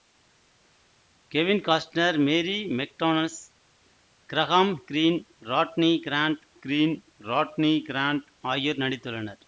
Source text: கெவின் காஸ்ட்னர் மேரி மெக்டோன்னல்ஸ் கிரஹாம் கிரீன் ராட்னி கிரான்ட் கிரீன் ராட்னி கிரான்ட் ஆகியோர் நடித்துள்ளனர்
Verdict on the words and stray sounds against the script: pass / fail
pass